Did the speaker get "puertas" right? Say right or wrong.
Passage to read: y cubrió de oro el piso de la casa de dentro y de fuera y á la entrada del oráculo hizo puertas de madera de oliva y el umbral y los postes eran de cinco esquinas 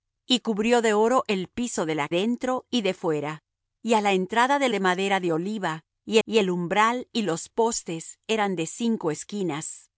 wrong